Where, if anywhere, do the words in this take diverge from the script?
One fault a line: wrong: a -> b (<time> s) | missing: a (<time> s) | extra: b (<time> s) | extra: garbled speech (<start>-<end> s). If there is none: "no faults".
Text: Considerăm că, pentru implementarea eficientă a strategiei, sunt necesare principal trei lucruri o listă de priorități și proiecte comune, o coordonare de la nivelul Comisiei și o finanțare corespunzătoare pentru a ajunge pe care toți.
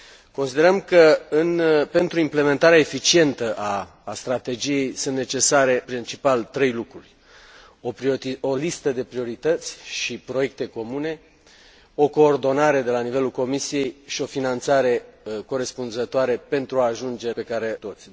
no faults